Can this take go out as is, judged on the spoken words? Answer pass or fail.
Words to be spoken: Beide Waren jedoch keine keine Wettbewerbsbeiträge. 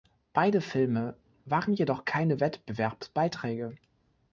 fail